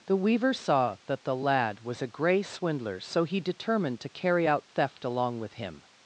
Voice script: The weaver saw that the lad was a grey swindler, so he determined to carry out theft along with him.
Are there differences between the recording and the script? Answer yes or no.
no